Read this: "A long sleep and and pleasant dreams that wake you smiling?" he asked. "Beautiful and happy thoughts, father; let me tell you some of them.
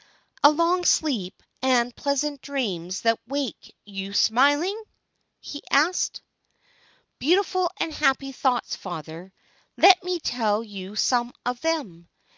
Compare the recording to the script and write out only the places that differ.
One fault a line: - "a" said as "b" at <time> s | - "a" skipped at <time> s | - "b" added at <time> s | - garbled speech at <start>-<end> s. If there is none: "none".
- "and" skipped at 1.9 s